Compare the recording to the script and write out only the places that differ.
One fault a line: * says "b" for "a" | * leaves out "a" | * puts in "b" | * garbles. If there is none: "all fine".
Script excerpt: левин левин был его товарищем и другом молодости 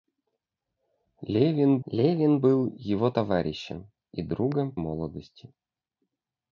all fine